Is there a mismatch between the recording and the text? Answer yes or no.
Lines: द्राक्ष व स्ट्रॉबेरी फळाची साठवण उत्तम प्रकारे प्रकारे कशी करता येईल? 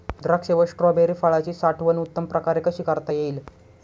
yes